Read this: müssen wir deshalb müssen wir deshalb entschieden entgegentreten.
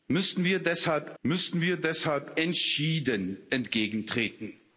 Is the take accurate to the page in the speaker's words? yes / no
yes